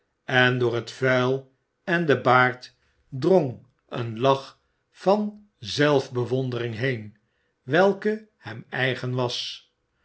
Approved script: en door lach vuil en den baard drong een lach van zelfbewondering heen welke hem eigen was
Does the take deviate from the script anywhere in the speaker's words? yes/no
yes